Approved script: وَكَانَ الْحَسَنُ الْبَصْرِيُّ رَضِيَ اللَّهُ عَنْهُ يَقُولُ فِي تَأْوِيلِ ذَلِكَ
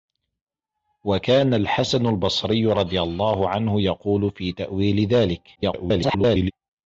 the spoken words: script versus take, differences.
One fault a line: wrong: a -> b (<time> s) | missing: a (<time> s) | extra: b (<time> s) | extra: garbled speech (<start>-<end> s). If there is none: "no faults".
extra: garbled speech (5.6-6.5 s)